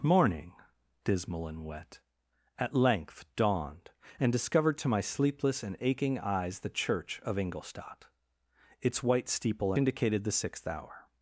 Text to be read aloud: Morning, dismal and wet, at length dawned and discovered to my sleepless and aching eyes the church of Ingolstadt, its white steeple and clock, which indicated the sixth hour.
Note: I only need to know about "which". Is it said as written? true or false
false